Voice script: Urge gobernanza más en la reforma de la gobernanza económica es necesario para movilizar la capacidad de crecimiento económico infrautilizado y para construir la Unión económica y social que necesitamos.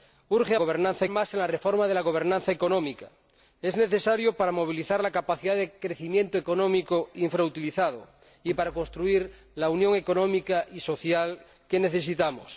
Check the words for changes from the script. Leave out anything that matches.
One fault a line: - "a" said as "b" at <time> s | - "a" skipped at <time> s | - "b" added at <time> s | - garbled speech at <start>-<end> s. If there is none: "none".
none